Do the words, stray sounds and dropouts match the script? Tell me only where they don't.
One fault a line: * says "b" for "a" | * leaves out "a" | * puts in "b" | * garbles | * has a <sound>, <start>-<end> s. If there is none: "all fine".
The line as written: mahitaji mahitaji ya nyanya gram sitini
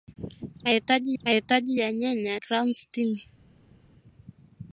all fine